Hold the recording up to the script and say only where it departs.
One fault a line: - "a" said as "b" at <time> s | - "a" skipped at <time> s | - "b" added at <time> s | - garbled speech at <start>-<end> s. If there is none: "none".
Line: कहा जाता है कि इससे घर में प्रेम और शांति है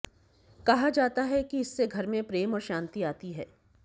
- "आती" added at 3.0 s